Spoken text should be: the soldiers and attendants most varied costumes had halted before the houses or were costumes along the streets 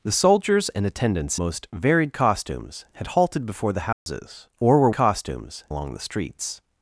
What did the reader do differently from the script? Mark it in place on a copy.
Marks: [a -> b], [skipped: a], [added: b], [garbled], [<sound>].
the soldiers and attendants most varied costumes had halted before the houses [dropout] or were costumes along the streets